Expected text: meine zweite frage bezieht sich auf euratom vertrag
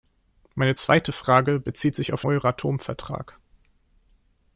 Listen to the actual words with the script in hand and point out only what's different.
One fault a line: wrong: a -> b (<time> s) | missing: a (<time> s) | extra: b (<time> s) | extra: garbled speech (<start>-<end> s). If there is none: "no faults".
no faults